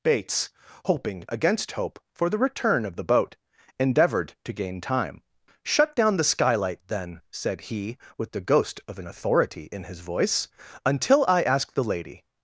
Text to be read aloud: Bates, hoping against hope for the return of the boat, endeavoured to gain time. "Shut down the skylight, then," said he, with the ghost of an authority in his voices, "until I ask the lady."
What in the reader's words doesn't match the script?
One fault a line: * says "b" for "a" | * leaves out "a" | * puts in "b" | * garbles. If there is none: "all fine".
* says "voice" for "voices"